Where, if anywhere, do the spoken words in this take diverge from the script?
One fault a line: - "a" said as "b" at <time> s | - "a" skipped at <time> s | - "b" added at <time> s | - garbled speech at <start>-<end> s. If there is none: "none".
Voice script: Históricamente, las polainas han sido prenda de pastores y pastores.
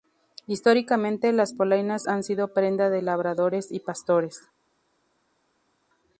- "pastores" said as "labradores" at 3.0 s